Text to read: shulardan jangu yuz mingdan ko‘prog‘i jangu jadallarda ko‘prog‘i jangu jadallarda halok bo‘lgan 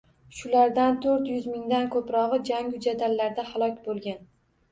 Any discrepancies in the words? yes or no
yes